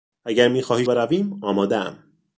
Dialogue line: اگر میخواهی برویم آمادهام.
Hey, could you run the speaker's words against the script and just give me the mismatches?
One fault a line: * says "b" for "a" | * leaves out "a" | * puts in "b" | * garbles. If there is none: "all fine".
all fine